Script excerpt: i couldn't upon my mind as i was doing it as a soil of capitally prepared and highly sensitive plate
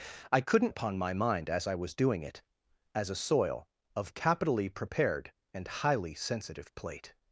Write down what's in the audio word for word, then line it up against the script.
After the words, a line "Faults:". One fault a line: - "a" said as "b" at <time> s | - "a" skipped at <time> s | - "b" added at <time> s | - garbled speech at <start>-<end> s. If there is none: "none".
i couldn't upon my mind as i was doing it as a soil of capitally prepared and highly sensitive plate
Faults:
none